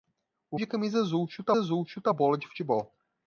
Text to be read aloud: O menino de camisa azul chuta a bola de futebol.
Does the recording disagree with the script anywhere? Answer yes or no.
yes